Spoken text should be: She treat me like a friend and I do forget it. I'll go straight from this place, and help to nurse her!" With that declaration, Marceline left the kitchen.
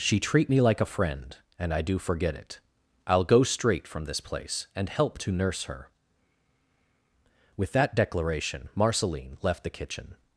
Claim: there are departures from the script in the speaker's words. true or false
false